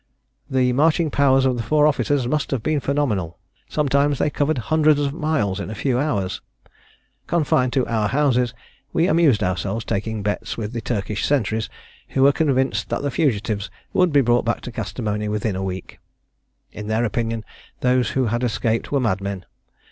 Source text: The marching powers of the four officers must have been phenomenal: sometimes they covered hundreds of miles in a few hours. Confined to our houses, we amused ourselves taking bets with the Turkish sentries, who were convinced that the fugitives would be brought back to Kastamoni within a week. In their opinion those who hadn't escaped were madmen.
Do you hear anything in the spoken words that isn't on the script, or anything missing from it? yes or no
yes